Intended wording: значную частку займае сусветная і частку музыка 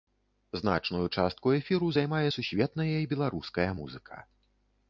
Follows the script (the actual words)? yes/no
no